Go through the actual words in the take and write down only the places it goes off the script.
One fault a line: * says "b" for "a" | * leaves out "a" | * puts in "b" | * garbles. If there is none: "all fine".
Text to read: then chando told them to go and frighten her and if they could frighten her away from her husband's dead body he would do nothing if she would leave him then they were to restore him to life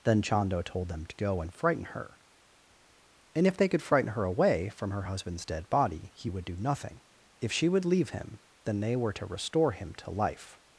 all fine